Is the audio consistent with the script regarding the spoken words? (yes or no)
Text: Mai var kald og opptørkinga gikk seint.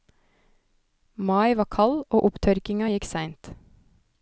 yes